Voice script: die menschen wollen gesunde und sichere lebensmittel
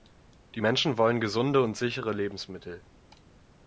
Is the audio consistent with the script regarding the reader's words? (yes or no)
yes